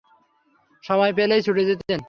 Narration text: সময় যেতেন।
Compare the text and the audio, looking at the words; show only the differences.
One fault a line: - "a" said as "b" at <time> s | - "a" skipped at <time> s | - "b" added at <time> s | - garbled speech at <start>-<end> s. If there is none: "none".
- "পেলেই ছুটে" added at 1.1 s